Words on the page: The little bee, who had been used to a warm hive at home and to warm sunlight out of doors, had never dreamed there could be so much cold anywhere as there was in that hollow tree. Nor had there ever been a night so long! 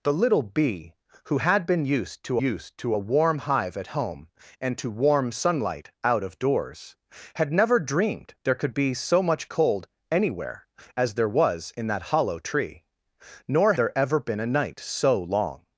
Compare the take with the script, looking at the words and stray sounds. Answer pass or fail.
fail